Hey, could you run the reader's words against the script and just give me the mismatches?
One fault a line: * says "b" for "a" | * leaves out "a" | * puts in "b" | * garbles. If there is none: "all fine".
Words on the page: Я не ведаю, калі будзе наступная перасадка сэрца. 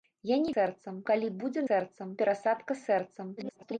* says "сэрца" for "ведаю"
* says "сэрца" for "наступная"
* garbles